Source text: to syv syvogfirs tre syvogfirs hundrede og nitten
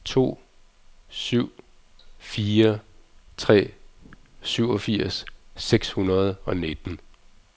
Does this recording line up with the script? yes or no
no